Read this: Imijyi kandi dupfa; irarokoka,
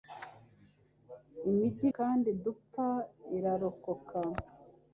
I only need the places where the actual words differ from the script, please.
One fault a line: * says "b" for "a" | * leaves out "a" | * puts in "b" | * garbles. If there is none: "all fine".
all fine